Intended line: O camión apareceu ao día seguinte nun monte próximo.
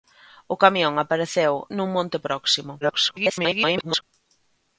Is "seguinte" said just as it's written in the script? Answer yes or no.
no